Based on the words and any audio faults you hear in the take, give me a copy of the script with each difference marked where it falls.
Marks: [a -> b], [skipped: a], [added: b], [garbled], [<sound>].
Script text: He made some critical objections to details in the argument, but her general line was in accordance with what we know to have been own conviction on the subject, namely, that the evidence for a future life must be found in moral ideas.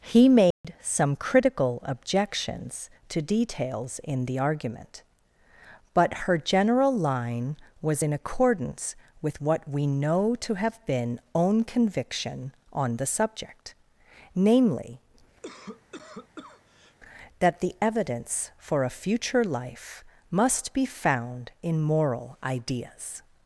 He made [dropout] some critical objections to details in the argument, but her general line was in accordance with what we know to have been own conviction on the subject, namely, [cough] that the evidence for a future life must be found in moral ideas.